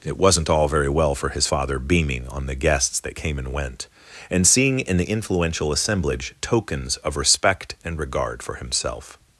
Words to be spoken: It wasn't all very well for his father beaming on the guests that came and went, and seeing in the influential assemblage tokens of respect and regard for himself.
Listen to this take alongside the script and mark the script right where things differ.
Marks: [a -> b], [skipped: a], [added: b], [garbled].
It wasn't all very well for his father beaming on the guests that came and went, and seeing in the influential assemblage tokens of respect and regard for himself.